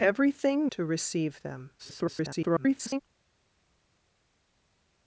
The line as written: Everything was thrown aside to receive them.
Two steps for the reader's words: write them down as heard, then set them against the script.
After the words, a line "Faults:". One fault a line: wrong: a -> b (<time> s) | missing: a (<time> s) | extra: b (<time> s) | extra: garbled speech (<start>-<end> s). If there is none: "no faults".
Everything to receive them. [garbled]
Faults:
missing: was thrown aside (0.7 s)
extra: garbled speech (1.8-3.0 s)